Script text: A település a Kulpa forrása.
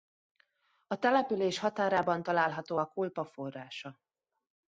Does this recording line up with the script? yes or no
no